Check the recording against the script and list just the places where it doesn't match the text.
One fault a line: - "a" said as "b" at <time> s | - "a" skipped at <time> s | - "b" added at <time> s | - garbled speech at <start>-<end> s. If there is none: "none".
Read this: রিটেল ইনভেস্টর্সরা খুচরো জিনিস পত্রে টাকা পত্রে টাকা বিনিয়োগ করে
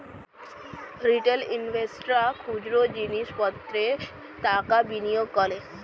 - "পত্রে টাকা" skipped at 4.8 s